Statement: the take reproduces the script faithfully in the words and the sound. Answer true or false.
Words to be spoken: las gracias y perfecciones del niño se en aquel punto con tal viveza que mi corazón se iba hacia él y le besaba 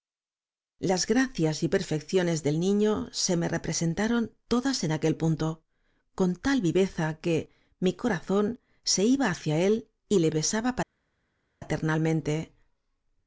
false